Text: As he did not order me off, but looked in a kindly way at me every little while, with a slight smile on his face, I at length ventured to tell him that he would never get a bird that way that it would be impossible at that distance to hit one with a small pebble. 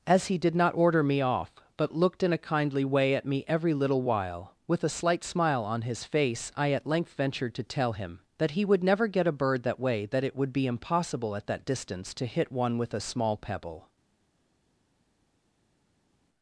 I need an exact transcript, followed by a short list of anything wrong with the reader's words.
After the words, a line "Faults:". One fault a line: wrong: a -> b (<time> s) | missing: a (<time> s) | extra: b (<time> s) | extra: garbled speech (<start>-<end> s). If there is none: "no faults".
As he did not order me off, but looked in a kindly way at me every little while, with a slight smile on his face, I at length ventured to tell him that he would never get a bird that way that it would be impossible at that distance to hit one with a small pebble.
Faults:
no faults